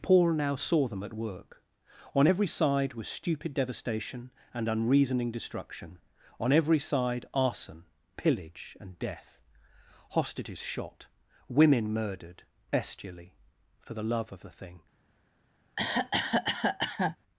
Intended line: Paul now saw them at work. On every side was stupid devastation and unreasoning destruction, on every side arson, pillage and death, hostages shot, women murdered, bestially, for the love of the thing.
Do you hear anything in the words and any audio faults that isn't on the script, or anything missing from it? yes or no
yes